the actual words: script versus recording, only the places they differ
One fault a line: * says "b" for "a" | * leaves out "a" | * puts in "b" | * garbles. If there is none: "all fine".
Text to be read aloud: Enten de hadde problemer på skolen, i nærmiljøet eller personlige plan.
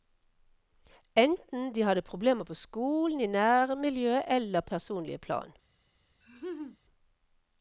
all fine